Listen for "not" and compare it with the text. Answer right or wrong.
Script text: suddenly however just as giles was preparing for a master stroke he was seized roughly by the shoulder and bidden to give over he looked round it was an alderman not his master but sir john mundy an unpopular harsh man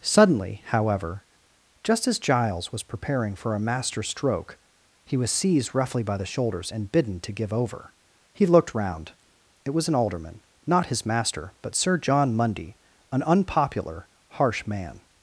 right